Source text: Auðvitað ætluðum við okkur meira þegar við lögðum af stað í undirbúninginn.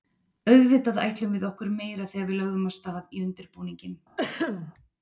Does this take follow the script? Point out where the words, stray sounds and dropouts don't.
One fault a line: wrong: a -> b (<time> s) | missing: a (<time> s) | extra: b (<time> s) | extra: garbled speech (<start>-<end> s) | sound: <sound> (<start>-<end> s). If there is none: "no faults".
sound: throat clearing (4.2-4.7 s)